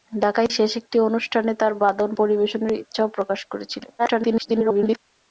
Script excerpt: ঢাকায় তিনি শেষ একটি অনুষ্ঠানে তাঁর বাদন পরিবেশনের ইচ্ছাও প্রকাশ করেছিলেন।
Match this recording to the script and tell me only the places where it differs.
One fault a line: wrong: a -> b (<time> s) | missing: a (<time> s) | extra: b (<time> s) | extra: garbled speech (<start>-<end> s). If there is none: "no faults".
missing: তিনি (0.5 s)
extra: garbled speech (4.0-5.0 s)